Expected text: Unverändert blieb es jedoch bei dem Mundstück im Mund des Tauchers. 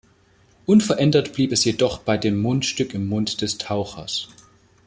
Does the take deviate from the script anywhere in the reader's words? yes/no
no